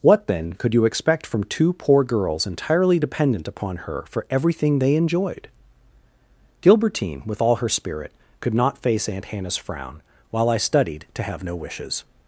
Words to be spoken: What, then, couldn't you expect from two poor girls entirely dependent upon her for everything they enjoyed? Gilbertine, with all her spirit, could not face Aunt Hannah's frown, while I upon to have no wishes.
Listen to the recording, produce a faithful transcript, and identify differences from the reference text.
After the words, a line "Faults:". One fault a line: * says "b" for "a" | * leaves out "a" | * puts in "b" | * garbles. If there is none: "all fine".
What, then, could you expect from two poor girls entirely dependent upon her for everything they enjoyed? Gilbertine, with all her spirit, could not face Aunt Hannah's frown, while I studied to have no wishes.
Faults:
* says "could" for "couldn't"
* says "studied" for "upon"